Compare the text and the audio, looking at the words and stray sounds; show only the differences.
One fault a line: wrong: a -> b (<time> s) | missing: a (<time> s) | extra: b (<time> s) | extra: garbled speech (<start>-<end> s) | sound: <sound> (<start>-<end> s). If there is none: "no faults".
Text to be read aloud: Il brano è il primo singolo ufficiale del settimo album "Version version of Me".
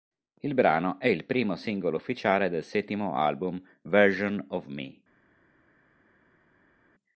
missing: version (4.4 s)